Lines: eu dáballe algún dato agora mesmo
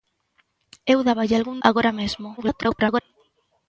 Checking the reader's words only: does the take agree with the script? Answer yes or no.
no